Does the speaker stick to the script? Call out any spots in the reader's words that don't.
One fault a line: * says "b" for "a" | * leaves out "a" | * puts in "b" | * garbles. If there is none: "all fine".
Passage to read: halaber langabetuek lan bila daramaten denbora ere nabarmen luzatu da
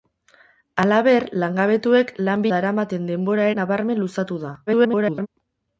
* leaves out "bila"
* leaves out "ere"
* garbles